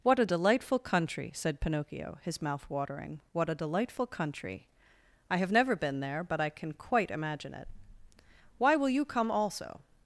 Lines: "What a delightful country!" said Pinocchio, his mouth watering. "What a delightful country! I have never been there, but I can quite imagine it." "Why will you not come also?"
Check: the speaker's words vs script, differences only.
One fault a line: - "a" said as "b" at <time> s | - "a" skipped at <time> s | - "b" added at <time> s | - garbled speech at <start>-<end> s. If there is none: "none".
- "not" skipped at 9.1 s